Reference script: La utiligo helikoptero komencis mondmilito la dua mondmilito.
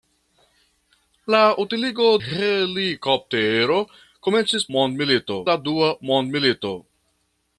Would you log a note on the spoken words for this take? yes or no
no